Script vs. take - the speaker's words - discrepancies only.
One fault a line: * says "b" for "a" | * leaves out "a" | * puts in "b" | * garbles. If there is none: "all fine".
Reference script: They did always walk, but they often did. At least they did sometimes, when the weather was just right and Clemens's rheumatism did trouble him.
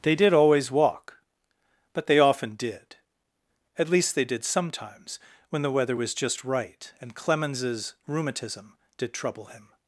all fine